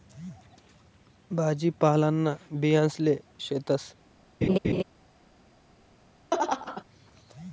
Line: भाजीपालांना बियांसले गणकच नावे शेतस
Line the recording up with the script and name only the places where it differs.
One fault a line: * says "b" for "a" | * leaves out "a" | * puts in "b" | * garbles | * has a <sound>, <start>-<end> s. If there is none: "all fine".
* leaves out "गणकच नावे"
* has a laugh, 4.4-4.8 s
* has a laugh, 6.3-6.8 s